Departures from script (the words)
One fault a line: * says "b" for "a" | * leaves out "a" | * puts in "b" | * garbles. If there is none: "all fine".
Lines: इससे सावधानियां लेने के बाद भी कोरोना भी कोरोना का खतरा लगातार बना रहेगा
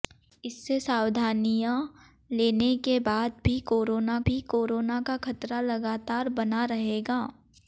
all fine